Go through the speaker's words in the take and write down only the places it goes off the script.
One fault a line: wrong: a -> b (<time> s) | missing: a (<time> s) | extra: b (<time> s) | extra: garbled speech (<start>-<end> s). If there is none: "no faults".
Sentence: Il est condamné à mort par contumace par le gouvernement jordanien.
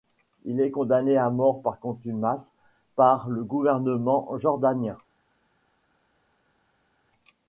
no faults